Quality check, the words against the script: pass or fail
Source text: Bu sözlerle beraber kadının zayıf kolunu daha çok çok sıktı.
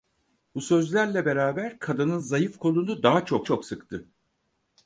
pass